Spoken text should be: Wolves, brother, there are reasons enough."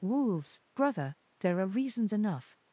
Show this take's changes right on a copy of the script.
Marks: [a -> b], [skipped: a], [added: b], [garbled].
Wolves, brother, there are reasons enough."